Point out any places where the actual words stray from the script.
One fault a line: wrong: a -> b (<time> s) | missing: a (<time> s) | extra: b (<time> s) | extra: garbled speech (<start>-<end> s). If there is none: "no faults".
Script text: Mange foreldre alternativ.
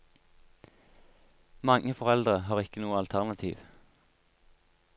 extra: har ikke noe (2.5 s)